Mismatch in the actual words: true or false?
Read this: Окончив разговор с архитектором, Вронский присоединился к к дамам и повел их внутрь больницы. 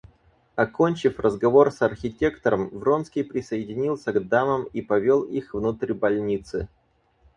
true